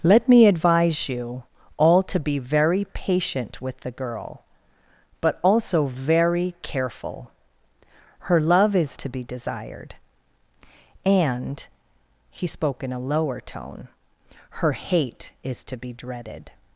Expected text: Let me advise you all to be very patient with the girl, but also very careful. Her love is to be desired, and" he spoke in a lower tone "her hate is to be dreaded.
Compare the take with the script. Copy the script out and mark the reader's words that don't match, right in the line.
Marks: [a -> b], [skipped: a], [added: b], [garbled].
Let me advise you all to be very patient with the girl, but also very careful. Her love is to be desired, and" he spoke in a lower tone "her hate is to be dreaded.